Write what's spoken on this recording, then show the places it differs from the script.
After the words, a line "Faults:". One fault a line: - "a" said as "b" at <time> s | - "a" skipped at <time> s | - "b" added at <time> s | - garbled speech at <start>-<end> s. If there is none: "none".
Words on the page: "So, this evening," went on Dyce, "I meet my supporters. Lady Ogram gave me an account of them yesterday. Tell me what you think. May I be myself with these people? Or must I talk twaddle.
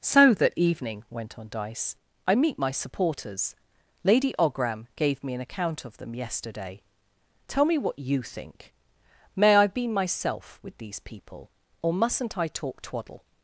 "So, that evening," went on Dyce, "I meet my supporters. Lady Ogram gave me an account of them yesterday. Tell me what you think. May I be myself with these people? Or mustn't I talk twaddle.
Faults:
- "this" said as "that" at 0.3 s
- "must" said as "mustn't" at 11.9 s